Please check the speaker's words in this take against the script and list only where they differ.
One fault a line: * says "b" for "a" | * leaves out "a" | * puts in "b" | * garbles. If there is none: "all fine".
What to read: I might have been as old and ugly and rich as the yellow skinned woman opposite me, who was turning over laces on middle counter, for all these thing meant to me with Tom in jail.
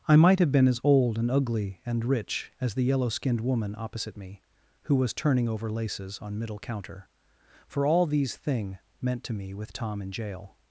all fine